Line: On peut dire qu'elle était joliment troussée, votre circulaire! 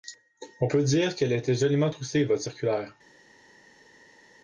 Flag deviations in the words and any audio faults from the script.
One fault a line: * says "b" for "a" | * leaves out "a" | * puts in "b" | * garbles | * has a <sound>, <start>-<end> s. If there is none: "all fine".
all fine